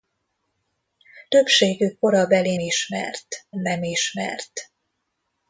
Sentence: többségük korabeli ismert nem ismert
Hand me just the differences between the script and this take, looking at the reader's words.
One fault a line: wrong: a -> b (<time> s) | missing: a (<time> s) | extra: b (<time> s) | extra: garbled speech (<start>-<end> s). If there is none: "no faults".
no faults